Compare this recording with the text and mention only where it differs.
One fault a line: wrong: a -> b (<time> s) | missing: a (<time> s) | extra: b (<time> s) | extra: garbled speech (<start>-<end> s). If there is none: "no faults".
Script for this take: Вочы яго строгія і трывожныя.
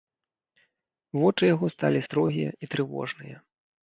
extra: сталі (1.7 s)